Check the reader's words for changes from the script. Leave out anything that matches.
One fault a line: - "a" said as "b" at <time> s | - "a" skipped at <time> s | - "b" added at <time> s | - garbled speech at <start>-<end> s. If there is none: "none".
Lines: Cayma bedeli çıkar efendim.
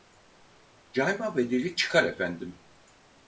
none